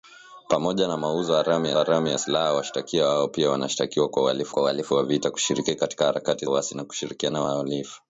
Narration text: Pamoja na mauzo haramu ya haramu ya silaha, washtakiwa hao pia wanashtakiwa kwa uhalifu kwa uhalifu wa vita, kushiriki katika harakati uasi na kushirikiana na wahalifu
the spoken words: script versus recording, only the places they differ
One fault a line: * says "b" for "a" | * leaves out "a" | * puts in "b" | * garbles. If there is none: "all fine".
all fine